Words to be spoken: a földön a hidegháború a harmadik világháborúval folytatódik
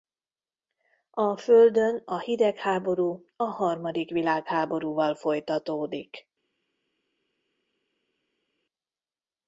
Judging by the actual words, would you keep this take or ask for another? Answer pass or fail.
pass